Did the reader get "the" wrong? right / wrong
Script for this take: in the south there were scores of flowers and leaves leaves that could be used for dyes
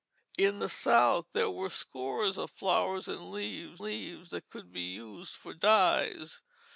right